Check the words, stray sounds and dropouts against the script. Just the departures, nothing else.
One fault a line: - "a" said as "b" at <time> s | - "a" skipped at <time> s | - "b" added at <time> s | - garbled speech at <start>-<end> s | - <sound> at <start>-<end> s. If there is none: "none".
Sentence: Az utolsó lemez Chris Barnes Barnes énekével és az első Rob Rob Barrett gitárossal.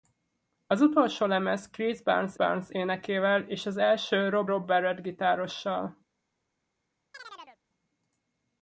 - chirp at 7.1-7.6 s